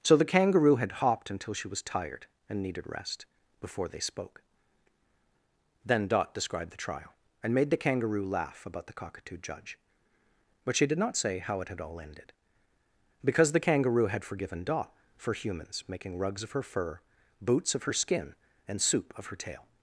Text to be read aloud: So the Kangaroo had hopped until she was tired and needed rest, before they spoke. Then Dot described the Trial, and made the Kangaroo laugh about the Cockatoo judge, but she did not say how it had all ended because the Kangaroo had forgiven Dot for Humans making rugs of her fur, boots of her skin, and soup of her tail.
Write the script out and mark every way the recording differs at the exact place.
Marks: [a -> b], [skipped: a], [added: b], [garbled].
So the Kangaroo had hopped until she was tired and needed rest, before they spoke. Then Dot described the Trial, and made the Kangaroo laugh about the Cockatoo judge, but she did not say how it had all ended because the Kangaroo had forgiven Dot for Humans making rugs of her fur, boots of her skin, and soup of her tail.